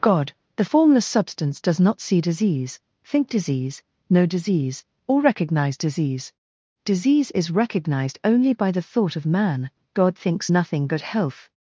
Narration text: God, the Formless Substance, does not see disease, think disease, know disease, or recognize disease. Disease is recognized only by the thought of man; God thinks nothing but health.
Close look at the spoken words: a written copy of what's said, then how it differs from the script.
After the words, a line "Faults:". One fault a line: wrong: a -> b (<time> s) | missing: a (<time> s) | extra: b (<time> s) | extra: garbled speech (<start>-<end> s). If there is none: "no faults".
God, the Formless Substance, does not see disease, think disease, know disease, or recognize disease. Disease is recognized only by the thought of man; God thinks nothing but health.
Faults:
no faults